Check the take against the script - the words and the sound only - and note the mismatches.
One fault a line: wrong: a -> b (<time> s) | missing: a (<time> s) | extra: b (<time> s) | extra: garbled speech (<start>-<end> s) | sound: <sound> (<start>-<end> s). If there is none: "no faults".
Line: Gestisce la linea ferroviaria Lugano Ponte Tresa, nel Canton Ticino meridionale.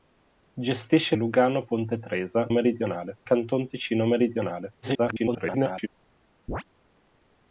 missing: la linea ferroviaria (1.1 s)
wrong: nel -> meridionale (2.5 s)
extra: garbled speech (4.8-5.9 s)
sound: chirp (6.5-6.6 s)